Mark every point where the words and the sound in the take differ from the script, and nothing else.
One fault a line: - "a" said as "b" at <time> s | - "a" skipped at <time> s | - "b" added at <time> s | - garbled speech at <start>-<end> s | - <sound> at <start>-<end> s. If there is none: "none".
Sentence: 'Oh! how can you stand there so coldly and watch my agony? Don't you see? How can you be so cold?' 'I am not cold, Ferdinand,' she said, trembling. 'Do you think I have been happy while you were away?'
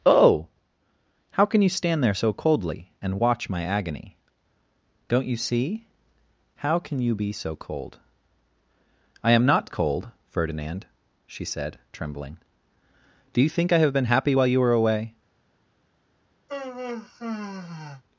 - sigh at 16.5-18.0 s